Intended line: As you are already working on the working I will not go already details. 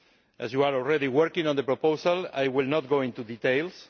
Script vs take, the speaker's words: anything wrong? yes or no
yes